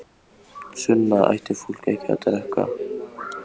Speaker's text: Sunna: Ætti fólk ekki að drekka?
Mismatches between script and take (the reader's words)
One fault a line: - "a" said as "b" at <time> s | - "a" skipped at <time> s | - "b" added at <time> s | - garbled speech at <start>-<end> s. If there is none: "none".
none